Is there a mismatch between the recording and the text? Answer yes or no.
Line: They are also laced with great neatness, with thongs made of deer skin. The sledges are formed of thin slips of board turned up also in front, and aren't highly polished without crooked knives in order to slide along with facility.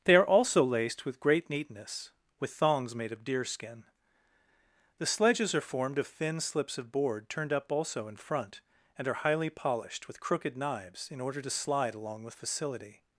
yes